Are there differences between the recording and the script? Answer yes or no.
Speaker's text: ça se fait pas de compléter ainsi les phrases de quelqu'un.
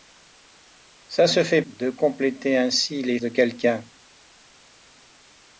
yes